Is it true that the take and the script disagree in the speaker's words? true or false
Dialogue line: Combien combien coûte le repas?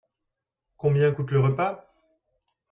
true